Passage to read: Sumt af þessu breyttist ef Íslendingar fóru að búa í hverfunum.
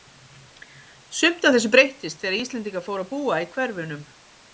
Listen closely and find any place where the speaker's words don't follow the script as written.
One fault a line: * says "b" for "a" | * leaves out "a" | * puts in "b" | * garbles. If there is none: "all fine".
* says "þegar" for "ef"